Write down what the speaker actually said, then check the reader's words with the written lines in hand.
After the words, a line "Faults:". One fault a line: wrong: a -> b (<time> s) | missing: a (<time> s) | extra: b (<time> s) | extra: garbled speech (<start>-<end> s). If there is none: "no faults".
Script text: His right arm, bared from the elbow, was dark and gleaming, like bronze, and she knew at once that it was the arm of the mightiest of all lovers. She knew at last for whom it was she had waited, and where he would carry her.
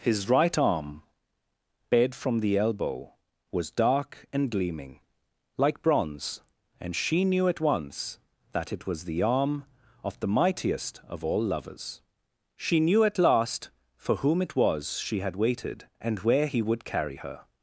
His right arm, bared from the elbow, was dark and gleaming, like bronze, and she knew at once that it was the arm of the mightiest of all lovers. She knew at last for whom it was she had waited, and where he would carry her.
Faults:
no faults